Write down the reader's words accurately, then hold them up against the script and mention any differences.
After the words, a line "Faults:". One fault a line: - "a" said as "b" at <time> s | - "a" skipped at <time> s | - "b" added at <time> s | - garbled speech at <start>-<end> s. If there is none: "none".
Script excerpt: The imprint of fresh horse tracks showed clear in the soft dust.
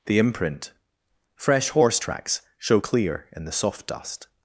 The imprint fresh horse tracks show clear in the soft dust.
Faults:
- "of" skipped at 0.7 s
- "showed" said as "show" at 2.6 s